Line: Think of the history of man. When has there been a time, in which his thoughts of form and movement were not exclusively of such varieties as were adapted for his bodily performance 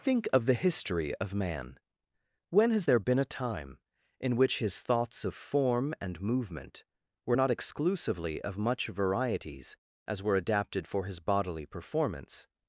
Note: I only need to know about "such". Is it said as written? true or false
false